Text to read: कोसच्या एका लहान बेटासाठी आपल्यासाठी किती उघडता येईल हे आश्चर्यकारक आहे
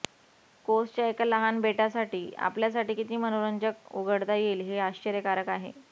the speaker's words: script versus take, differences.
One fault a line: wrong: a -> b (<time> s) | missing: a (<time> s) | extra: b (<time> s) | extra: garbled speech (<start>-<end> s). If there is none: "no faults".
extra: मनोरंजक (3.2 s)